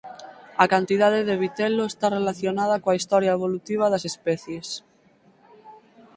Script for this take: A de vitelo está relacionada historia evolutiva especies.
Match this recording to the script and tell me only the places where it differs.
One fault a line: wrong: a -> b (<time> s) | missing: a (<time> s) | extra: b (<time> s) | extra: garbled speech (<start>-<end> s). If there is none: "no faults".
extra: cantidade (0.7 s)
extra: coa (2.8 s)
extra: das (3.9 s)